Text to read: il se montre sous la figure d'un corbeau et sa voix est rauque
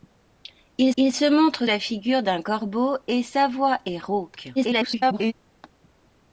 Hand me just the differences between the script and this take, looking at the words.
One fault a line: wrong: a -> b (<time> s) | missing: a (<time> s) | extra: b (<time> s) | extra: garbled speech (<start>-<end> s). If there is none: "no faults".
extra: il (1.0 s)
missing: sous (1.7 s)
extra: garbled speech (4.6-5.3 s)